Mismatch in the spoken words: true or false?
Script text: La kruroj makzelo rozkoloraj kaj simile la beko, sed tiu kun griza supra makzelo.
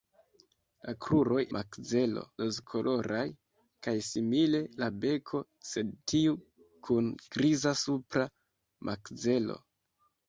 false